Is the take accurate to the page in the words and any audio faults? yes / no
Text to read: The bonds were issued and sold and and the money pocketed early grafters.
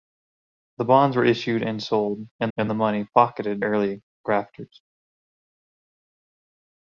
yes